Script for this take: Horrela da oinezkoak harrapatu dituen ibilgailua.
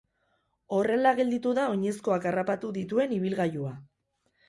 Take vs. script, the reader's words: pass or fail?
fail